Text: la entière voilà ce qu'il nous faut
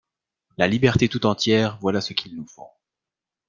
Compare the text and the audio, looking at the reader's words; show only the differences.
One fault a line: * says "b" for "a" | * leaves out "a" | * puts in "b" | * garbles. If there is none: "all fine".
* puts in "liberté tout"